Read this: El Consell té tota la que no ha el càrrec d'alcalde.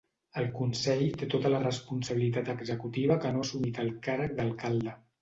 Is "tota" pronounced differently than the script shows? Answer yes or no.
no